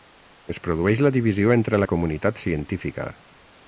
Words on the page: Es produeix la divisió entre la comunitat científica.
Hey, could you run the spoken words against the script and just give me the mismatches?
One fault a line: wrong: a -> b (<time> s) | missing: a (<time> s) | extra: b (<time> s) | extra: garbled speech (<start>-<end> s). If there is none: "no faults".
no faults